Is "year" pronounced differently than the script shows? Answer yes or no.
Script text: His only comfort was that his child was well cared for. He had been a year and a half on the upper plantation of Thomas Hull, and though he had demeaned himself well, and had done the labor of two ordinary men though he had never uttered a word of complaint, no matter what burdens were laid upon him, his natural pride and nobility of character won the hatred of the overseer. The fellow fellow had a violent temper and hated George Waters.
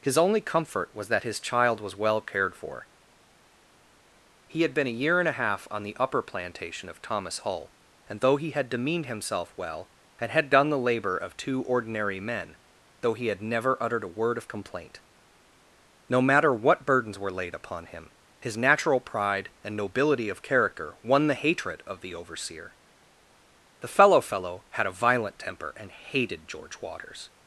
no